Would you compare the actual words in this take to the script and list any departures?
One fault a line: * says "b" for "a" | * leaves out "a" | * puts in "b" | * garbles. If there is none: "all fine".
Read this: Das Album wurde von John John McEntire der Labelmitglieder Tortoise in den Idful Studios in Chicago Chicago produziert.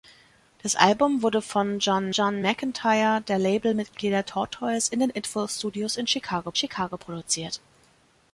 all fine